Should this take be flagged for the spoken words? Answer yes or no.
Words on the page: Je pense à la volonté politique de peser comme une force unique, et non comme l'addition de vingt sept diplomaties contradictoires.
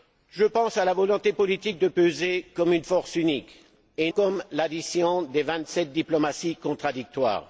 yes